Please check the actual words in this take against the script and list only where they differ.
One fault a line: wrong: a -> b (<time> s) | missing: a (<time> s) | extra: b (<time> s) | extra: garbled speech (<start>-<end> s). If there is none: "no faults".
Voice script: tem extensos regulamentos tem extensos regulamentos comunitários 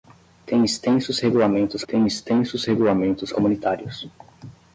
no faults